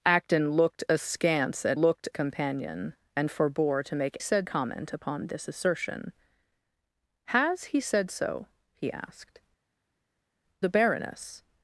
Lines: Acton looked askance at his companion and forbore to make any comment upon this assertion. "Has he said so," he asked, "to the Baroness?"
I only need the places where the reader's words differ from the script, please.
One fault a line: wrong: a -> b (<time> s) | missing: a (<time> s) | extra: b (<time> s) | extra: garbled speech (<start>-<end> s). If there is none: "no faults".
wrong: his -> looked (1.8 s)
wrong: any -> said (4.2 s)
missing: to (9.4 s)